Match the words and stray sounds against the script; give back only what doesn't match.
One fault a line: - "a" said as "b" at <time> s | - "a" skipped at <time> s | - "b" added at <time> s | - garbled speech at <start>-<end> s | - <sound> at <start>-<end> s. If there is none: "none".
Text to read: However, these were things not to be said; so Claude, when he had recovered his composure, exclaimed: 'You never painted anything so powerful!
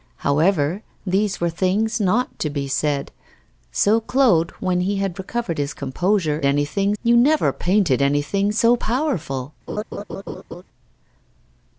- "exclaimed" said as "anything" at 6.4 s
- laugh at 9.7-10.6 s